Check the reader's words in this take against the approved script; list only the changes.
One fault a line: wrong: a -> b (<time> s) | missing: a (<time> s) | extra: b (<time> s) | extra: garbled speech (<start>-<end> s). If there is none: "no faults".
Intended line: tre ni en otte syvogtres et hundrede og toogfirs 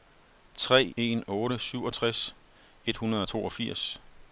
missing: ni (0.9 s)